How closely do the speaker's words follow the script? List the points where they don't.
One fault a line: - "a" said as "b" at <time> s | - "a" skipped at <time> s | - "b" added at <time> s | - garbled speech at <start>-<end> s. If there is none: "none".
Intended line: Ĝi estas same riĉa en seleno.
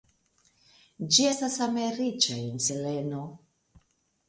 none